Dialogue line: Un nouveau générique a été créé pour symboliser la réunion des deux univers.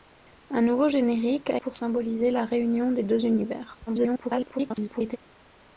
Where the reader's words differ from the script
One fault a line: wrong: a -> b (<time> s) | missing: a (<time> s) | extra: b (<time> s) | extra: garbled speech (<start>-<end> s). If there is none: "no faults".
missing: été créé (1.6 s)
extra: garbled speech (3.9-5.2 s)